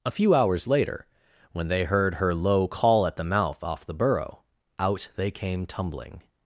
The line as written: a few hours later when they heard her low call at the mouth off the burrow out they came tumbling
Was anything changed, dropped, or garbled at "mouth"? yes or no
no